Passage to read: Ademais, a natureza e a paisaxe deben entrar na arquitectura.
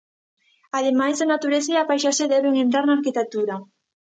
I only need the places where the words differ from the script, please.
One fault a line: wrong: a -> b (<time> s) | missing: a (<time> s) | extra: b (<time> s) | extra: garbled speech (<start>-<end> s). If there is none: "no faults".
no faults